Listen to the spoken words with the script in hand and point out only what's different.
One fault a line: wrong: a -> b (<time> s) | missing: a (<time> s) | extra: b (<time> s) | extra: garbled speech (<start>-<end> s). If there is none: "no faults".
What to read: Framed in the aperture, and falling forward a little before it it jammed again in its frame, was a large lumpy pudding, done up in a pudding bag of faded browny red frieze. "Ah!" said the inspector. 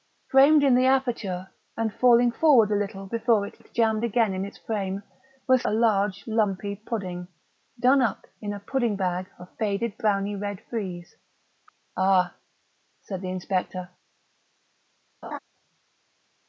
no faults